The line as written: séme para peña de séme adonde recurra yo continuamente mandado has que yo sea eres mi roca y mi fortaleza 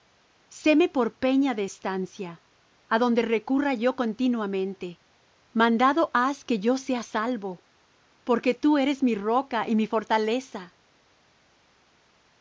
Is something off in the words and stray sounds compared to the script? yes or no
yes